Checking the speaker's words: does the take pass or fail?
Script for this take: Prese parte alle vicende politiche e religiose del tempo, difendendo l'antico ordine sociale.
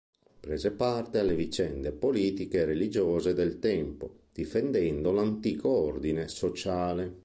pass